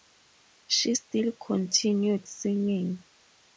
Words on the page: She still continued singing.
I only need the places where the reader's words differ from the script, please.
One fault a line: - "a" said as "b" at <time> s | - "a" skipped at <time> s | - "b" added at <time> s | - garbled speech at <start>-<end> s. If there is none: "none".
none